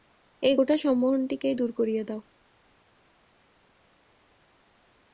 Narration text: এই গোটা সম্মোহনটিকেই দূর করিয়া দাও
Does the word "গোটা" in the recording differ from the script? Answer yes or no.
no